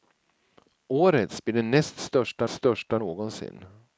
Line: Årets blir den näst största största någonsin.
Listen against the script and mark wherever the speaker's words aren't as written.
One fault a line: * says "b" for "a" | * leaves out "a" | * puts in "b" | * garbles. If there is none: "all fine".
all fine